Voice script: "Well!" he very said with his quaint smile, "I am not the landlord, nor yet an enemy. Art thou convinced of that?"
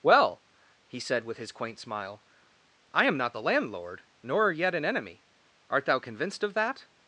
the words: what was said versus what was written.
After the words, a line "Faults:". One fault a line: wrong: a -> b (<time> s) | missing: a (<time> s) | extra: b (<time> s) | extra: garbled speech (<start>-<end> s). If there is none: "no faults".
"Well!" he said with his quaint smile, "I am not the landlord, nor yet an enemy. Art thou convinced of that?"
Faults:
missing: very (1.0 s)